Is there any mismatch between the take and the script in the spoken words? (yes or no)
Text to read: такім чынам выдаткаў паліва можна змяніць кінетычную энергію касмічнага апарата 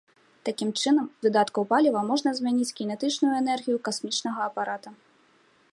no